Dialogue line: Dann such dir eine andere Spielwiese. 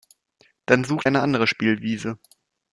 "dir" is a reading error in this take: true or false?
true